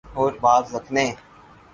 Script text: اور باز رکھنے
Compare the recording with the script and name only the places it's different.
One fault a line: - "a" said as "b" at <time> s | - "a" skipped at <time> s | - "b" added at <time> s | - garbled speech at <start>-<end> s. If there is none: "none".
none